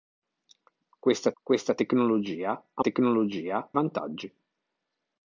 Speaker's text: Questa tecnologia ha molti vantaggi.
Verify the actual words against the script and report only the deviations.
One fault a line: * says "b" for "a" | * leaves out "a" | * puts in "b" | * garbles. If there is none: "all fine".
* puts in "questa"
* says "tecnologia" for "molti"